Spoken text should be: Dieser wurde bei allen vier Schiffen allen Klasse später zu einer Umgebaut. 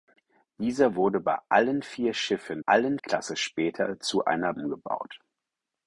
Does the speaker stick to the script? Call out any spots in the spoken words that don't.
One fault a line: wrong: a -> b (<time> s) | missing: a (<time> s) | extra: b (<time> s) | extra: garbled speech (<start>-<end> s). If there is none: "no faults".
no faults